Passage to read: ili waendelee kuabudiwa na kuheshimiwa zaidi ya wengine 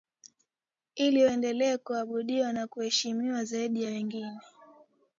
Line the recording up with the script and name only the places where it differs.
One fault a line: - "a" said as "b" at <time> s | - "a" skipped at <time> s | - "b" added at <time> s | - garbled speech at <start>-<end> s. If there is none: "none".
none